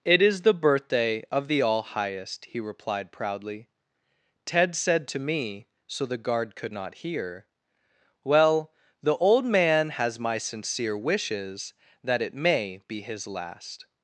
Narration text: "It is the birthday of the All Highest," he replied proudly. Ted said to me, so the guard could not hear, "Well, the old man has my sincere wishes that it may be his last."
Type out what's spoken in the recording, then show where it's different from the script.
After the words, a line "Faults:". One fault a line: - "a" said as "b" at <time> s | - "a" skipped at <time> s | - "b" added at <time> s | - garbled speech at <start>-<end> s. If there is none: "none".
"It is the birthday of the All Highest," he replied proudly. Ted said to me, so the guard could not hear, "Well, the old man has my sincere wishes that it may be his last."
Faults:
none